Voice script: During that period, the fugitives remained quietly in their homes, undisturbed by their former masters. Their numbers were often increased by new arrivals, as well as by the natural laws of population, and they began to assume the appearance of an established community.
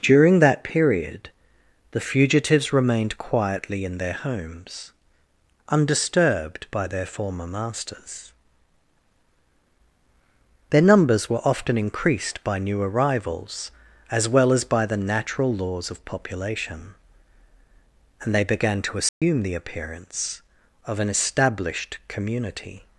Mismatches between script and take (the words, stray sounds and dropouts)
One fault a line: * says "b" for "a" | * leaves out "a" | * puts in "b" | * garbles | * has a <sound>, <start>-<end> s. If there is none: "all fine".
* has a dropout, 19.1-19.2 s